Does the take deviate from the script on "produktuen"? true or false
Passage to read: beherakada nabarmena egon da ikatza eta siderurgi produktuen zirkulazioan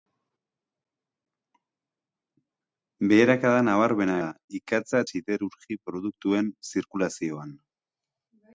false